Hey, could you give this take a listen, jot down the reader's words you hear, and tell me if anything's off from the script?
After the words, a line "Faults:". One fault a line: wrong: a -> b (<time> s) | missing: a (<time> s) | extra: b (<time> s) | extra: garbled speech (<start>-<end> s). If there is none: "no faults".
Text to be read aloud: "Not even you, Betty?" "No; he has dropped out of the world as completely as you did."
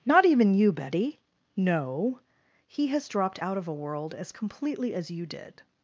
"Not even you, Betty?" "No; he has dropped out of a world as completely as you did."
Faults:
wrong: the -> a (3.7 s)